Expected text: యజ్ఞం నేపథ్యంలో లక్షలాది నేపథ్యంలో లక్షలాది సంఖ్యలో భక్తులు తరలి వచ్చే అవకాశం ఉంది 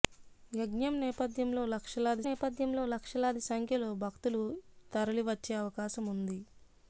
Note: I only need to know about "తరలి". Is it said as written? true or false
true